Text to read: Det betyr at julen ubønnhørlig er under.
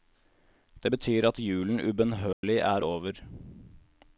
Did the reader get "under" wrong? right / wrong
wrong